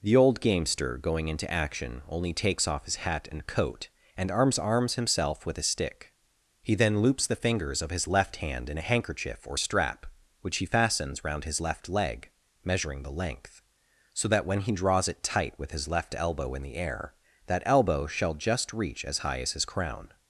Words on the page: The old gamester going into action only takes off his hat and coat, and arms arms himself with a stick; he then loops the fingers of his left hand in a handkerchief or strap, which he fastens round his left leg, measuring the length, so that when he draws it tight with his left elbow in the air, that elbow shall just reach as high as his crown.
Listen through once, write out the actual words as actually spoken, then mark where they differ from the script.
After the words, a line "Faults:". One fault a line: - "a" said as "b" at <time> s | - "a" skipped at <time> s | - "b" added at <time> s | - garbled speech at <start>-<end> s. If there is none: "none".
The old gamester going into action only takes off his hat and coat, and arms arms himself with a stick; he then loops the fingers of his left hand in a handkerchief or strap, which he fastens round his left leg, measuring the length, so that when he draws it tight with his left elbow in the air, that elbow shall just reach as high as his crown.
Faults:
none